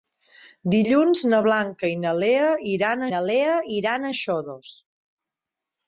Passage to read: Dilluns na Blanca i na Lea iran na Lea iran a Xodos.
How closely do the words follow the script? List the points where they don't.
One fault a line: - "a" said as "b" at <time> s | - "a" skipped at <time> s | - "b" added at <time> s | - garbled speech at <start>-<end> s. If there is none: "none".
none